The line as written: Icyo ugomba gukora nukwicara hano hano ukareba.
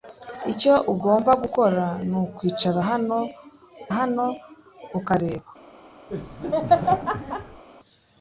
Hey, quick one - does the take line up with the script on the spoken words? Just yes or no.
yes